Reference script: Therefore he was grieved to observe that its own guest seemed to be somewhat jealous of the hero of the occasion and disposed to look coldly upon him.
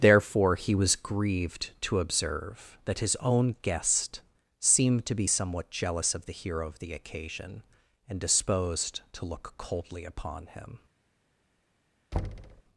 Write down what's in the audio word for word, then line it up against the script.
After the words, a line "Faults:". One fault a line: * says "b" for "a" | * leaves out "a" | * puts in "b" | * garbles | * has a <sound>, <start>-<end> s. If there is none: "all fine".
Therefore he was grieved to observe that his own guest seemed to be somewhat jealous of the hero of the occasion and disposed to look coldly upon him.
Faults:
* says "his" for "its"
* has a thud, 12.1-12.6 s